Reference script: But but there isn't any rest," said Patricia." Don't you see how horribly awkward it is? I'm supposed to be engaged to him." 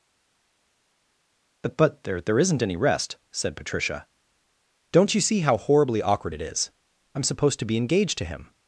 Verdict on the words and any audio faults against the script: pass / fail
fail